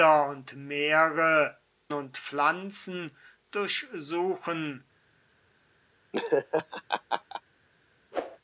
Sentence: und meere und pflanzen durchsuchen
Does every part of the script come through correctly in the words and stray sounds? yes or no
no